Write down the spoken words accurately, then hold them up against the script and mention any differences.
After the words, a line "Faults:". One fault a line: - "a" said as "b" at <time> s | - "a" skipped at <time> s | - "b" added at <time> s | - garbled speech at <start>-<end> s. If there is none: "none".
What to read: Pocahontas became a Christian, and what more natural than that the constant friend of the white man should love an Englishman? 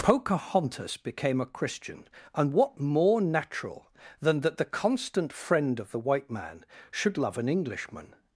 Pocahontas became a Christian, and what more natural than that the constant friend of the white man should love an Englishman?
Faults:
none